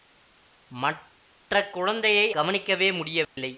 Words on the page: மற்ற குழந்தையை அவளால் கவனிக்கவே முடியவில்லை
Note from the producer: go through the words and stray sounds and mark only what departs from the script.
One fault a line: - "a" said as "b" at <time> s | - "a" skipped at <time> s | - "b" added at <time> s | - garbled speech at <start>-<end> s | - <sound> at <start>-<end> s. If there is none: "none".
- "அவளால்" skipped at 2.3 s
- dropout at 3.2-3.4 s